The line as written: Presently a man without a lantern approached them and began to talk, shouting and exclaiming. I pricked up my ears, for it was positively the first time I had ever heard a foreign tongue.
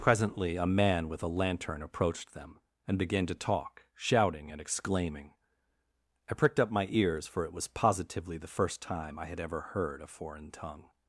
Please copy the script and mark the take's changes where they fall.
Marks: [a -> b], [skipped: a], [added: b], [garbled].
Presently a man [without -> with] a lantern approached them and began to talk, shouting and exclaiming. I pricked up my ears, for it was positively the first time I had ever heard a foreign tongue.